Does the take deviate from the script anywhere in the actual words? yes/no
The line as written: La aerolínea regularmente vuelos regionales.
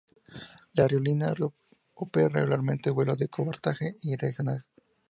yes